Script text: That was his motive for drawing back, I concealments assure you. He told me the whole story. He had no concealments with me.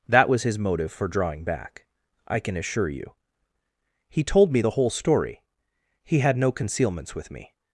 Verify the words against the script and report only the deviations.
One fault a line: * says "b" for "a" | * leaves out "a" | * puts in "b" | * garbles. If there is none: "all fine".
* says "can" for "concealments"